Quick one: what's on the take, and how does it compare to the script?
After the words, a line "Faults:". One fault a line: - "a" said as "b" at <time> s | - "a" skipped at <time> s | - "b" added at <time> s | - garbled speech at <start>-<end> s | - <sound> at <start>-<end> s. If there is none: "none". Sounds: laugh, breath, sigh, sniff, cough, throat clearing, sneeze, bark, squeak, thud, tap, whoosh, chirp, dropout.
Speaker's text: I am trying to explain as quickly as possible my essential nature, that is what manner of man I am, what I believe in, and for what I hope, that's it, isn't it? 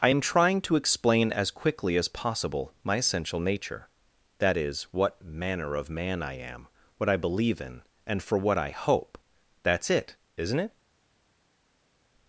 I am trying to explain as quickly as possible my essential nature, that is what manner of man I am, what I believe in, and for what I hope, that's it, isn't it?
Faults:
none